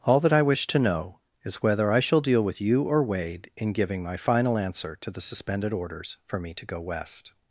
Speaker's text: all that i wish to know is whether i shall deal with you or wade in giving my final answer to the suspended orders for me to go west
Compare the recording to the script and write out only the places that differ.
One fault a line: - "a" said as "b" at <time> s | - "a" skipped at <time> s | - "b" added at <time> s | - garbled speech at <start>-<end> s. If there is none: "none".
none